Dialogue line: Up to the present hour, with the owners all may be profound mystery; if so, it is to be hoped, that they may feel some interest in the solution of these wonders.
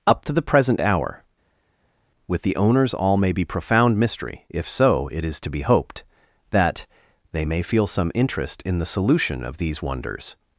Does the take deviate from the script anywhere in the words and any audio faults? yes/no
no